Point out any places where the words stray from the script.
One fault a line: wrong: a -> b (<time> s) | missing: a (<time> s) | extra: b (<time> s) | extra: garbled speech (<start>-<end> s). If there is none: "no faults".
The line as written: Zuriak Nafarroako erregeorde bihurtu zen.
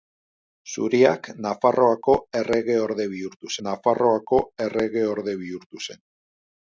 extra: Nafarroako erregeorde bihurtu (3.7 s)